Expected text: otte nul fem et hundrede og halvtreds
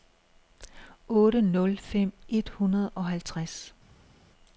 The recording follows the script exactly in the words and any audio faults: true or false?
true